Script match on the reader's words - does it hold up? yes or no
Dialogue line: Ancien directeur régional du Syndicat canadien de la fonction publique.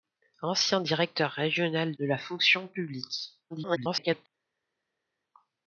no